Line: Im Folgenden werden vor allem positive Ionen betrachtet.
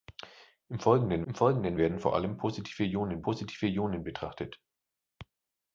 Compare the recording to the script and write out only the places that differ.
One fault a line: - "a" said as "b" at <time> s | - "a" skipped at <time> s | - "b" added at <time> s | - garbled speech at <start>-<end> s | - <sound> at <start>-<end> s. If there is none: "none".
- "im Folgenden" added at 1.2 s
- "positive Ionen" added at 3.2 s